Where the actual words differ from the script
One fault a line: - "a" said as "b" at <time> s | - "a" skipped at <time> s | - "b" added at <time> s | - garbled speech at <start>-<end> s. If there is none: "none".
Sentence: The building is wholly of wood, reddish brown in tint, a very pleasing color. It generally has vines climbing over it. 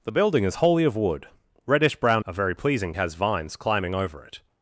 - "in tint" skipped at 2.2 s
- "color It generally" skipped at 2.9 s